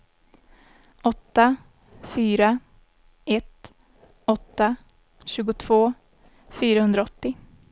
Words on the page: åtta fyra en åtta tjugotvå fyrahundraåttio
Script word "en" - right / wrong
wrong